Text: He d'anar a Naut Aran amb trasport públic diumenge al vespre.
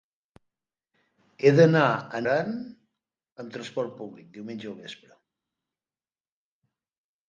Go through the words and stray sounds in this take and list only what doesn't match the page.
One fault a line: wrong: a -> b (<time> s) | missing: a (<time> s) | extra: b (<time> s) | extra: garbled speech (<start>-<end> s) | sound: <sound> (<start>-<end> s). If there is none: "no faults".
missing: Naut (2.2 s)